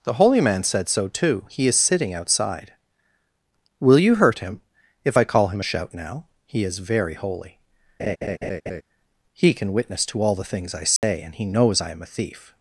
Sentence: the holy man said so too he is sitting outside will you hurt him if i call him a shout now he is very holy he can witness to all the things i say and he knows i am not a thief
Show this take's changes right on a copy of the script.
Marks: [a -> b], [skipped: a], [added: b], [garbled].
the holy man said so too he is sitting outside will you hurt him if i call him a shout now he is very holy he can witness to all the things i say and he knows i am [skipped: not] a thief